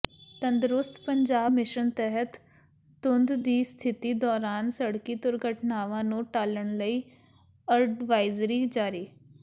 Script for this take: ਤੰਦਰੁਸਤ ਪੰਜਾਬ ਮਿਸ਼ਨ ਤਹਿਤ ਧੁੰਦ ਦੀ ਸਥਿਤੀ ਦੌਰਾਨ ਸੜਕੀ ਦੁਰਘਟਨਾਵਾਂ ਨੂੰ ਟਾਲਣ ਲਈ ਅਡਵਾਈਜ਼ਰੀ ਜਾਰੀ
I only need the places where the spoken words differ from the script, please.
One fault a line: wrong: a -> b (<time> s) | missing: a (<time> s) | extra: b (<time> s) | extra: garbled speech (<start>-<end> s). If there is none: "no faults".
no faults